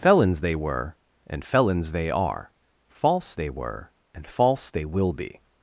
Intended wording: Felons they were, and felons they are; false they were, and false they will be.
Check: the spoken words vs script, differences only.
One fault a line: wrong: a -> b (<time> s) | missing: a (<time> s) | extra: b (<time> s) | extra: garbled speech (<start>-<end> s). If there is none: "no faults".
no faults